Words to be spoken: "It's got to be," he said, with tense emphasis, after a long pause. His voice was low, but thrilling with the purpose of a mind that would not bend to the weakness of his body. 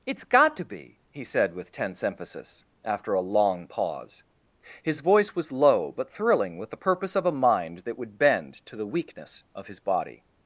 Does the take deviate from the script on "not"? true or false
true